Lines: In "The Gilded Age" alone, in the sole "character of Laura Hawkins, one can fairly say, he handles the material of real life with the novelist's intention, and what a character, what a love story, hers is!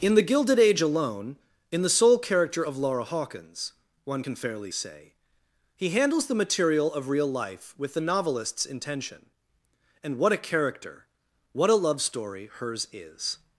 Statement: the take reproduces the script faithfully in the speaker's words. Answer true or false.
true